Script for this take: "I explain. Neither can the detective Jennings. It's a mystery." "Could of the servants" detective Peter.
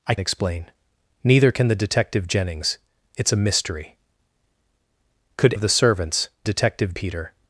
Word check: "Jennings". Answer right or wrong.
right